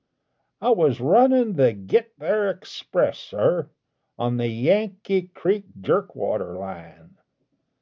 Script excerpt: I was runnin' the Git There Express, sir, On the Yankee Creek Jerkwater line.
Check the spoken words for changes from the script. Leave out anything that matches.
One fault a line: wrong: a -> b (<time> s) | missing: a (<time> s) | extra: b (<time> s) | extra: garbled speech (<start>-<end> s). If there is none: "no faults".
no faults